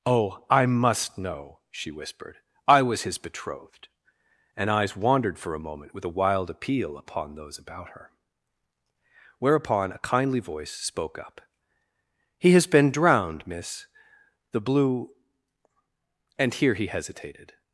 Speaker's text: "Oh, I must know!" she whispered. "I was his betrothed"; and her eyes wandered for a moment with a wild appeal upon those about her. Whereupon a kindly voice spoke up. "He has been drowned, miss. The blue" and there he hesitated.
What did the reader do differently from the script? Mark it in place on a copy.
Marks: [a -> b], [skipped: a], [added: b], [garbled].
"Oh, I must know!" she whispered. "I was his betrothed"; and [skipped: her] eyes wandered for a moment with a wild appeal upon those about her. Whereupon a kindly voice spoke up. "He has been drowned, miss. The blue" and [there -> here] he hesitated.